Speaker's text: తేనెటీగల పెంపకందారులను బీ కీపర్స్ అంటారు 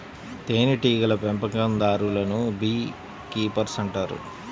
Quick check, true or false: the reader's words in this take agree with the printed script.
true